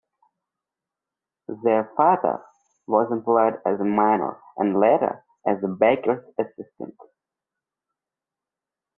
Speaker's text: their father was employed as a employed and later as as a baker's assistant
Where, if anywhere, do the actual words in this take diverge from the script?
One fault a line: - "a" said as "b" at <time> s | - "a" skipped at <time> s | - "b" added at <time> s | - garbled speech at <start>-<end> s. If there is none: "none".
- "employed" said as "miner" at 3.9 s
- "as" skipped at 5.6 s